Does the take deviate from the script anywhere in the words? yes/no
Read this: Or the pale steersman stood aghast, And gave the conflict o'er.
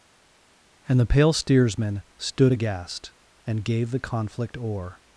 yes